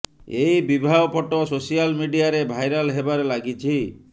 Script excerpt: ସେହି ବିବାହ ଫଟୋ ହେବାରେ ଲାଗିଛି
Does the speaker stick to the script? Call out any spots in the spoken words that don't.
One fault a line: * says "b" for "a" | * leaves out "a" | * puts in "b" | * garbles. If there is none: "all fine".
* says "ଏହି" for "ସେହି"
* puts in "ସୋସିଆଲ ମିଡିଆରେ ଭାଇରାଲ"